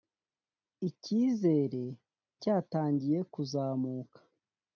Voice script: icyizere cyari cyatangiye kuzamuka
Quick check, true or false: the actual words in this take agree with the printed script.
false